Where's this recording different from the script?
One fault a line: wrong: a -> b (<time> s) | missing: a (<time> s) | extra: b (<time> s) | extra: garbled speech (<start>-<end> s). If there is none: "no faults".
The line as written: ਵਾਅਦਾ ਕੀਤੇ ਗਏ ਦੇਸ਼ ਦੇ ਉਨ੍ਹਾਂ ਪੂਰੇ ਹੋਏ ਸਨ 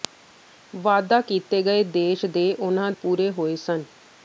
no faults